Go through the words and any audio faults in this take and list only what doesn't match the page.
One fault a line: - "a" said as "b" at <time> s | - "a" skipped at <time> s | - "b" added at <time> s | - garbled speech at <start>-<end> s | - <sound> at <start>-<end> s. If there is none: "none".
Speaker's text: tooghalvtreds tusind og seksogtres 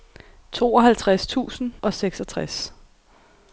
none